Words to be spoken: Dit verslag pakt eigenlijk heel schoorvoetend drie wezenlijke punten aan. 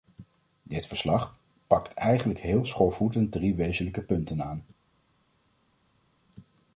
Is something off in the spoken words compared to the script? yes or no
no